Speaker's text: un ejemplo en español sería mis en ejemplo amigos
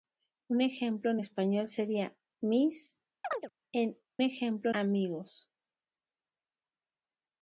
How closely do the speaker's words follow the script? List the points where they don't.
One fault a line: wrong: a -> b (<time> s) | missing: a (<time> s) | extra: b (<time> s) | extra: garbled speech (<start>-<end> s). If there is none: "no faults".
no faults